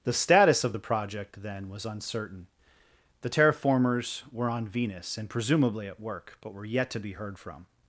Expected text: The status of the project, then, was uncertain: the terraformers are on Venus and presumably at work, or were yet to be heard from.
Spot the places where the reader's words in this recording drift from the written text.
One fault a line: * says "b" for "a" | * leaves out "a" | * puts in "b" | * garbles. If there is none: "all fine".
* says "were" for "are"
* says "but" for "or"